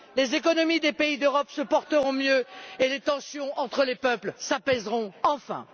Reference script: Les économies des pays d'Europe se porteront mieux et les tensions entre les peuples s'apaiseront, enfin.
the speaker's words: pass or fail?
pass